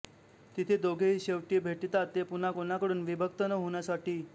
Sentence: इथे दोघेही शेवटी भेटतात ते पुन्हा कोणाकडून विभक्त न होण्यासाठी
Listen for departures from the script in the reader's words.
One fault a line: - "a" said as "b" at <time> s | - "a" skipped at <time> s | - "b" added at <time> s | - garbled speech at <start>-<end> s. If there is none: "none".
- "इथे" said as "तिथे" at 0.6 s